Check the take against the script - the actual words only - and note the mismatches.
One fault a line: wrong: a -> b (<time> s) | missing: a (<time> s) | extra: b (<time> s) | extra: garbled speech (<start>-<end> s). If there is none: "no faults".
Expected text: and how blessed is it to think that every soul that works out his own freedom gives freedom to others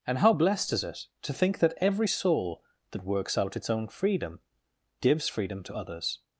wrong: his -> its (3.6 s)